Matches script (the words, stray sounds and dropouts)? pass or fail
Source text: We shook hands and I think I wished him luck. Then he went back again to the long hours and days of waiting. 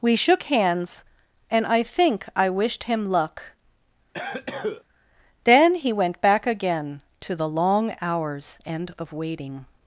fail